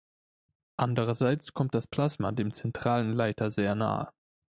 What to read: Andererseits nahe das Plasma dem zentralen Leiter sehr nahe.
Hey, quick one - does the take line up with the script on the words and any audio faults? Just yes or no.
no